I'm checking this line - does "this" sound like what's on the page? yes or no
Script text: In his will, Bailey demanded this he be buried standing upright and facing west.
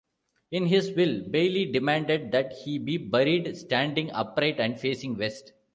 no